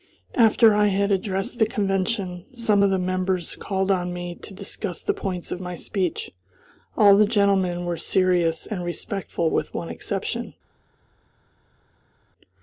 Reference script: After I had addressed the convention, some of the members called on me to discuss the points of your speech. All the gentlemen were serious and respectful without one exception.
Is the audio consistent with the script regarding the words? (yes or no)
no